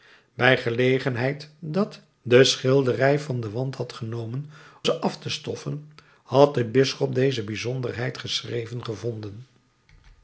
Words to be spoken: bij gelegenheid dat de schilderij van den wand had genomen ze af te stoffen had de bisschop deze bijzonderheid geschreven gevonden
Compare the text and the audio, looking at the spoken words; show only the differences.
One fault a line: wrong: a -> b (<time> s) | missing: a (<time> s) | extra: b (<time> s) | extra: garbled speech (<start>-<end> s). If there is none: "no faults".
no faults